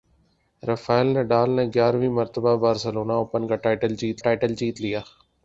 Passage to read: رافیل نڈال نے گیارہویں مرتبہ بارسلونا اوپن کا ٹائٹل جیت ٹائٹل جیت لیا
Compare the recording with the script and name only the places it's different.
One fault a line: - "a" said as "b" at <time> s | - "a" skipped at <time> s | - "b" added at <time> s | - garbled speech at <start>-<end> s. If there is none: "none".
none